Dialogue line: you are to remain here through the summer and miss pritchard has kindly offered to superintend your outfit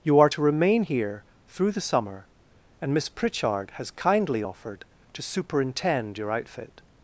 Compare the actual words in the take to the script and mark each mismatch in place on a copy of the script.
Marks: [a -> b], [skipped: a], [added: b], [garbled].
you are to remain here through the summer and miss pritchard has kindly offered to superintend your outfit